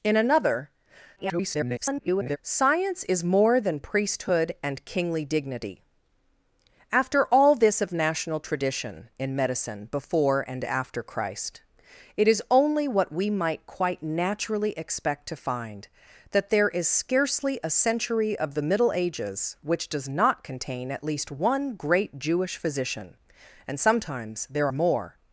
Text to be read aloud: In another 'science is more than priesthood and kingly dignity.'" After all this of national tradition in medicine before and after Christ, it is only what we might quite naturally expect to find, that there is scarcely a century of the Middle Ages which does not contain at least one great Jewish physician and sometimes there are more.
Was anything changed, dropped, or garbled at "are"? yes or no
yes